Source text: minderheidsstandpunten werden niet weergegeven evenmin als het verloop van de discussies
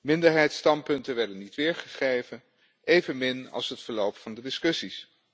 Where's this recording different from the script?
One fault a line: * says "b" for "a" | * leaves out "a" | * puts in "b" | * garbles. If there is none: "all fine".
all fine